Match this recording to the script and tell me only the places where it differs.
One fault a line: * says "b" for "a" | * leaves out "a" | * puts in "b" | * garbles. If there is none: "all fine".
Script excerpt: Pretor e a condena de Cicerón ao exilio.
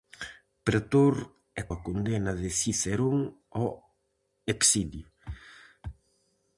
all fine